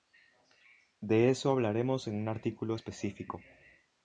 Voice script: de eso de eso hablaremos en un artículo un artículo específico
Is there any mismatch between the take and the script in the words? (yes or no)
yes